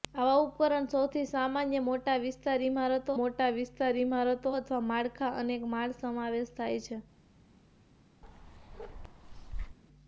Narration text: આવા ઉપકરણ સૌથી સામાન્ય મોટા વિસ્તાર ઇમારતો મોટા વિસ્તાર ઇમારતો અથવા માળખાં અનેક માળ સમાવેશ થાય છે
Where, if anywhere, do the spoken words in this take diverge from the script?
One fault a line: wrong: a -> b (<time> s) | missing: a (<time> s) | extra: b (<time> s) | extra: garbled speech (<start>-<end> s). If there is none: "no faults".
no faults